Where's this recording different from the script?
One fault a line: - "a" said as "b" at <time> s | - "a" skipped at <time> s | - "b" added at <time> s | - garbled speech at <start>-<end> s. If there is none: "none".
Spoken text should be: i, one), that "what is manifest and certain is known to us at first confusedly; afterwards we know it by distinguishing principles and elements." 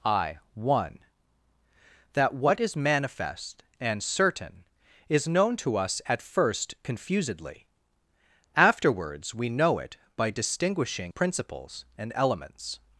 none